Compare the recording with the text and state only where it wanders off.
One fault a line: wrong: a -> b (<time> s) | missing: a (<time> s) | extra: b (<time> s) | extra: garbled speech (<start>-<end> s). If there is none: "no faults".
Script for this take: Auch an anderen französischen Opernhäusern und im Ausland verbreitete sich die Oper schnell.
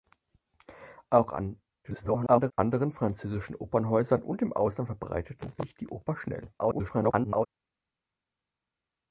extra: garbled speech (1.8-2.5 s)
extra: garbled speech (6.6-7.5 s)